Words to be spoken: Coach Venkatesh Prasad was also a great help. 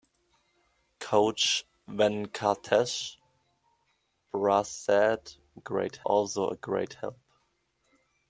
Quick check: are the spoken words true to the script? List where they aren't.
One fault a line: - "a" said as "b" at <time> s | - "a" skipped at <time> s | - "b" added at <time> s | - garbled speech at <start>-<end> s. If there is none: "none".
- "was" said as "great" at 5.6 s